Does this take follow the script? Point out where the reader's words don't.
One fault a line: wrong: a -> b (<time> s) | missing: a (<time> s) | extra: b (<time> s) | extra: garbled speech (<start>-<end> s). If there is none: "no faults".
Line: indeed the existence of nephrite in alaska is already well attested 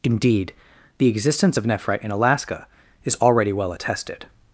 no faults